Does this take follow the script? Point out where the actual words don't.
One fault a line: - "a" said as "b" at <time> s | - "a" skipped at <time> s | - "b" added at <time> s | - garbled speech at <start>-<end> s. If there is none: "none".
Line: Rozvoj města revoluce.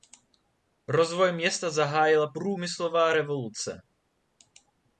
- "zahájila průmyslová" added at 1.7 s